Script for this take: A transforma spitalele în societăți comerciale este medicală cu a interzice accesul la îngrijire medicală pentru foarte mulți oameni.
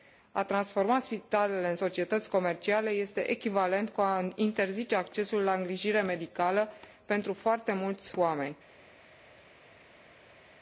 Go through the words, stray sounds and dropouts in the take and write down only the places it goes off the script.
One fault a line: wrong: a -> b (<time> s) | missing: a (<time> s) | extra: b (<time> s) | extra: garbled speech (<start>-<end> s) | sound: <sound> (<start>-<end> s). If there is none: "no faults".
wrong: medicală -> echivalent (3.3 s)